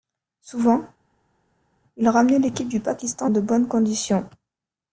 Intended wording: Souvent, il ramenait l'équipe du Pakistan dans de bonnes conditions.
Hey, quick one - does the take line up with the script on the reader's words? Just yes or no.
no